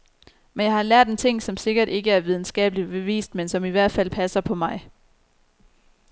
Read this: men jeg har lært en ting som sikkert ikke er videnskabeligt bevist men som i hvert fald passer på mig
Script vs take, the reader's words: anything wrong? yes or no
no